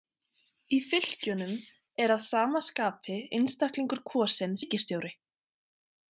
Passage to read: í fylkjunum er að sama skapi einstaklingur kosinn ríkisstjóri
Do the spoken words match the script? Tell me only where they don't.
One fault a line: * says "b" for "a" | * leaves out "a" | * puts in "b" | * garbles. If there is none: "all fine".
all fine